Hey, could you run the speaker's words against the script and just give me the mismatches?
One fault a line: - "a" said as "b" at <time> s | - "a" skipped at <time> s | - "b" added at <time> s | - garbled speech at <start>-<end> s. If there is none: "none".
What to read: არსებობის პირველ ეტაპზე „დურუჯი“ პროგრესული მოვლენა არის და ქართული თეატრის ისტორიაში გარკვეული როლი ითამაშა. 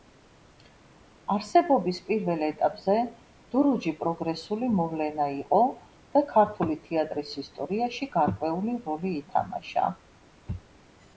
- "არის" said as "იყო" at 5.3 s